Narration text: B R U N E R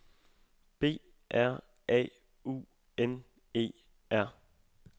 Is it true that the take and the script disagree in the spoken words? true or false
true